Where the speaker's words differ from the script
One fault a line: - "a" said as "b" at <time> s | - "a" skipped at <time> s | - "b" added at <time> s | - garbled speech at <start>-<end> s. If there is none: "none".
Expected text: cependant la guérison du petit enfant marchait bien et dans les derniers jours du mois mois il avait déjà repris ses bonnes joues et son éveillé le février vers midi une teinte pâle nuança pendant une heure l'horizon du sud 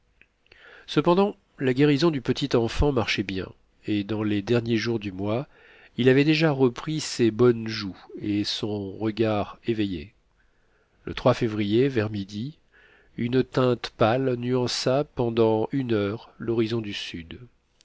- "mois" skipped at 5.5 s
- "regard" added at 9.0 s